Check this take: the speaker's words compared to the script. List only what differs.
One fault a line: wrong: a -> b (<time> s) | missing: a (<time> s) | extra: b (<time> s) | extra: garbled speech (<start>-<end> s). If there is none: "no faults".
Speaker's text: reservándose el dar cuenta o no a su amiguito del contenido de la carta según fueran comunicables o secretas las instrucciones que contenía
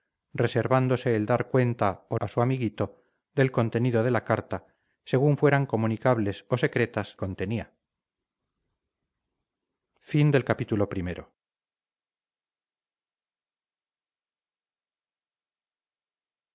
missing: no (2.2 s)
missing: las instrucciones que (7.2 s)